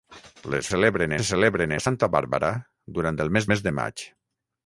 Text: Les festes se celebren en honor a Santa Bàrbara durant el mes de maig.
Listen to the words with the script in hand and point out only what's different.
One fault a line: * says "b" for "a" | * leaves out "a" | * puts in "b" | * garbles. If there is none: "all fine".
* says "celebren" for "festes"
* leaves out "en honor"
* puts in "mes"